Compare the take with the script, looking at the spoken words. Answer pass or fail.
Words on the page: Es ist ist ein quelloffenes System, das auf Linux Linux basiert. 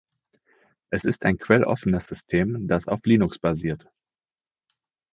fail